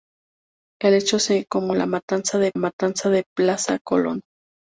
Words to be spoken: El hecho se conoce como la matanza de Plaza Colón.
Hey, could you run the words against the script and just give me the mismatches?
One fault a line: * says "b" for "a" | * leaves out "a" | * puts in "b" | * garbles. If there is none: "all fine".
* leaves out "conoce"
* puts in "matanza de"